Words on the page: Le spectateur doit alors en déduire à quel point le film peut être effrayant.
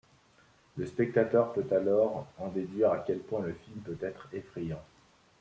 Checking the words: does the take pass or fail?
fail